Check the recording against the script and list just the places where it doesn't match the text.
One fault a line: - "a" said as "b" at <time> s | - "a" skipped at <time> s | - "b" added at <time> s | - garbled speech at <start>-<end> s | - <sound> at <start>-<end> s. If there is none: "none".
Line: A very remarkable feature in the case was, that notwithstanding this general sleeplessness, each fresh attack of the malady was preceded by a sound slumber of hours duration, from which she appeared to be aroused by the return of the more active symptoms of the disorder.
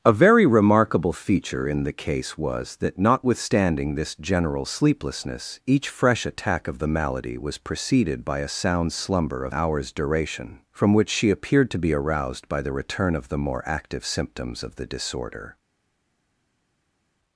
none